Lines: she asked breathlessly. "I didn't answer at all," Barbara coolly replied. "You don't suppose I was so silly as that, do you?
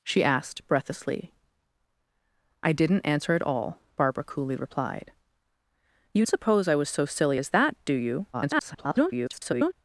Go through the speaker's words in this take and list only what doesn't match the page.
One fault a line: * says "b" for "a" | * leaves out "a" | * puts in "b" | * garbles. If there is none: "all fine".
* leaves out "don't"
* garbles